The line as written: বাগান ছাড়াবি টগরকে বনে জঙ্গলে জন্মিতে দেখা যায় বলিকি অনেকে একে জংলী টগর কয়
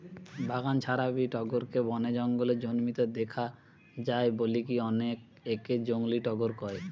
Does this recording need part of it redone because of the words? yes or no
no